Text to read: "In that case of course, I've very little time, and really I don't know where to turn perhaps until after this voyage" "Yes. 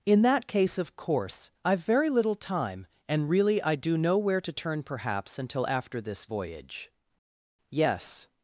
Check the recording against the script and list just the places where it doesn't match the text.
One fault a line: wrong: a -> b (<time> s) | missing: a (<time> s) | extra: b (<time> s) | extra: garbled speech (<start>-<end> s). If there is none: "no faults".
wrong: don't -> do (3.7 s)